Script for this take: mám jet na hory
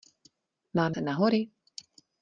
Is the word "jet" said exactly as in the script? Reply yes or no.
no